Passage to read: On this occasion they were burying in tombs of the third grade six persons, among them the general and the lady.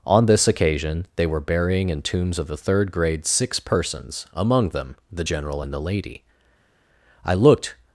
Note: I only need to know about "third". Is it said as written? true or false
true